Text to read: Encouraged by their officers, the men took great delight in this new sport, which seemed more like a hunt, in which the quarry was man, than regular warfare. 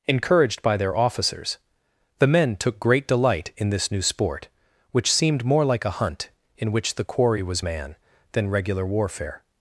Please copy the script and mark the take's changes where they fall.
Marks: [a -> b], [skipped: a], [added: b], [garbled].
Encouraged by their officers, the men took great delight in this new sport, which seemed more like a hunt, in which the quarry was man, than regular warfare.